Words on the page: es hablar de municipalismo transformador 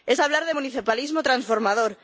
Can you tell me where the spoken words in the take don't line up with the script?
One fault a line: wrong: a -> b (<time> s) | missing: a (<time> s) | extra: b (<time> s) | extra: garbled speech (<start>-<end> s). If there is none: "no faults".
no faults